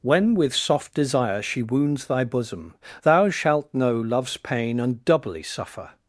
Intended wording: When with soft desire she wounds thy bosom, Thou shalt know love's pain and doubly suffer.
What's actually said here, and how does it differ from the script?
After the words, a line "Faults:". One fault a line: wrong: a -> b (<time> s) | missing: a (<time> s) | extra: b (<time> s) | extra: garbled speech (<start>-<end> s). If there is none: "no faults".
When with soft desire she wounds thy bosom, Thou shalt know love's pain and doubly suffer.
Faults:
no faults